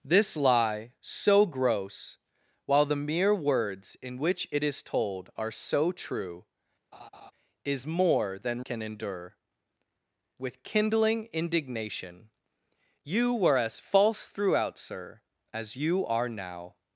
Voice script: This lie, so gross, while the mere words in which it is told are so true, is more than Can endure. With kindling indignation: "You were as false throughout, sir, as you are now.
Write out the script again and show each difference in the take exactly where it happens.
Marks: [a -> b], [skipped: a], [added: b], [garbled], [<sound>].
This lie, so gross, while the mere words in which it is told are so true, [laugh] is more than Can endure. With kindling indignation: "You were as false throughout, sir, as you are now.